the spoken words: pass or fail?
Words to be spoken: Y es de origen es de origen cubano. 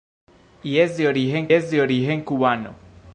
pass